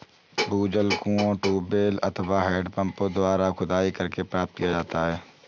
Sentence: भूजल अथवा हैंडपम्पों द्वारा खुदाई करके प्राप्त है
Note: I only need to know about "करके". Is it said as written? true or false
true